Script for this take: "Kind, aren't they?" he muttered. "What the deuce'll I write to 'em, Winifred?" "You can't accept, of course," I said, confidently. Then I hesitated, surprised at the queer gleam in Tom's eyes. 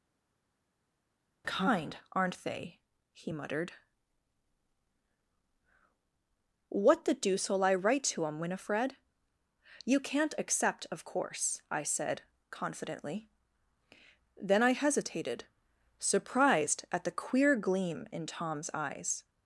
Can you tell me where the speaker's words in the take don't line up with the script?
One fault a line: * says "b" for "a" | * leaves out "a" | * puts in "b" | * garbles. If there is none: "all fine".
all fine